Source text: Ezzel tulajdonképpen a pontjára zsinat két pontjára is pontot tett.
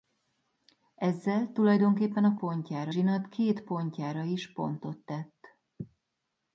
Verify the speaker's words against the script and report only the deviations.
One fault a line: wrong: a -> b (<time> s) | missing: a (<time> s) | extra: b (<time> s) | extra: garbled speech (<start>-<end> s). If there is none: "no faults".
no faults